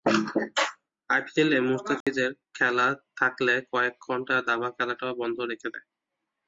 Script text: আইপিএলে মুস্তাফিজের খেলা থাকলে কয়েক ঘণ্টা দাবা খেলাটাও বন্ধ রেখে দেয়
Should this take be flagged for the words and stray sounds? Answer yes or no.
yes